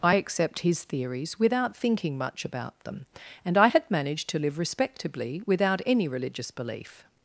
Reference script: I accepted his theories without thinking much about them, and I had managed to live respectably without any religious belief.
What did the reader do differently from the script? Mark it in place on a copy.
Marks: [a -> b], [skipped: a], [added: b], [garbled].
I [accepted -> accept] his theories without thinking much about them, and I had managed to live respectably without any religious belief.